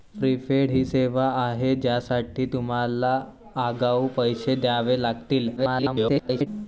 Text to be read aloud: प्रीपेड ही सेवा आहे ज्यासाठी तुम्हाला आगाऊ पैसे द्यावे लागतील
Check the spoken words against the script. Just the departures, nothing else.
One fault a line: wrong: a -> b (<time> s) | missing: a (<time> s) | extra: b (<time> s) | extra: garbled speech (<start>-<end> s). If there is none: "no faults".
extra: garbled speech (5.6-6.5 s)